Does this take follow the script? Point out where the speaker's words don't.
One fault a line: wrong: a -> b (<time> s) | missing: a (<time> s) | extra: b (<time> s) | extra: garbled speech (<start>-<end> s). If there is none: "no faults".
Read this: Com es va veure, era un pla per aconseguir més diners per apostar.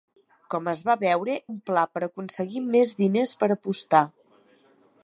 missing: era (1.4 s)